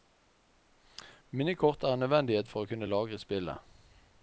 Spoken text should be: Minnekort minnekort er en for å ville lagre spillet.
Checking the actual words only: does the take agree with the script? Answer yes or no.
no